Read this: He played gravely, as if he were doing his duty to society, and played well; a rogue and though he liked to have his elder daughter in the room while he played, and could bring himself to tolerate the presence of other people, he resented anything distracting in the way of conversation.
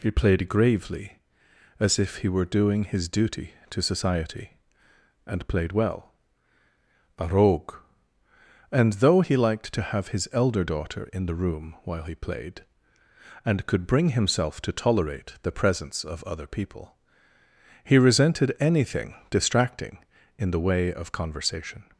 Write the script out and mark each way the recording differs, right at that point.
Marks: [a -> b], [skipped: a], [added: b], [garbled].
He played gravely, as if he were doing his duty to society, and played well; a rogue and though he liked to have his elder daughter in the room while he played, and could bring himself to tolerate the presence of other people, he resented anything distracting in the way of conversation.